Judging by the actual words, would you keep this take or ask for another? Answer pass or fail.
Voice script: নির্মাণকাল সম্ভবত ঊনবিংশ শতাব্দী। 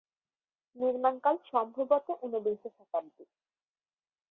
pass